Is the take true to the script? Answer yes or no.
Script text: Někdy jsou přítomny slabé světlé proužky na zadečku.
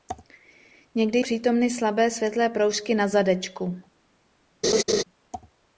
no